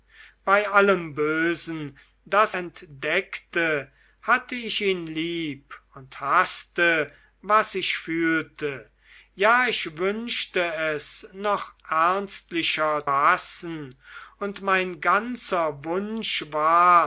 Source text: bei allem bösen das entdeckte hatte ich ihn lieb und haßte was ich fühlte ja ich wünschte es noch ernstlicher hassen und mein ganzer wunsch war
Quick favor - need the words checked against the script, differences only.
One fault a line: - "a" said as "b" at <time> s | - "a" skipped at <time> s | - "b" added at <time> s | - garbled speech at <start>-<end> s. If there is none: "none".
none